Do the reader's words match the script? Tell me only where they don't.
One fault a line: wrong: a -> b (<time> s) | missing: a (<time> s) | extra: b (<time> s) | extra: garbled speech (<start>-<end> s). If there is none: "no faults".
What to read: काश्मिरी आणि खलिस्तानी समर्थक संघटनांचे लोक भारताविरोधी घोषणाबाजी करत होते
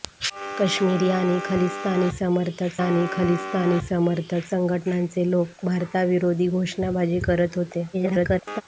extra: आणि खलिस्तानी समर्थक (2.8 s)
extra: garbled speech (7.9-8.6 s)